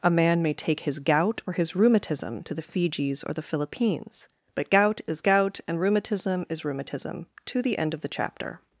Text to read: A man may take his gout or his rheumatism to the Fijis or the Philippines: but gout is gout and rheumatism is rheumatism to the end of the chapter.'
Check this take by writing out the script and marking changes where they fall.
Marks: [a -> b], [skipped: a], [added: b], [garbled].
A man may take his gout or his rheumatism to the Fijis or the Philippines: but gout is gout and rheumatism is rheumatism to the end of the chapter.'